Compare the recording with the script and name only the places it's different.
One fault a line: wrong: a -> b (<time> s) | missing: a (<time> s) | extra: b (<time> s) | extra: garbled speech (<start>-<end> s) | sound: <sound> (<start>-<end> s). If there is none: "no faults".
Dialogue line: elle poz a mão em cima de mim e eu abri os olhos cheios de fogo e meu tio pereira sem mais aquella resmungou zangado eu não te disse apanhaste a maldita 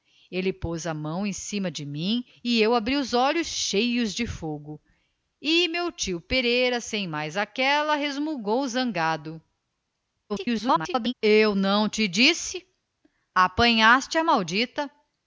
extra: garbled speech (10.3-11.1 s)